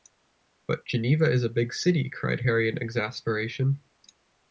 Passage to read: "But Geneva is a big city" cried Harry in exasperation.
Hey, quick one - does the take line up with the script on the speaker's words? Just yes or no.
yes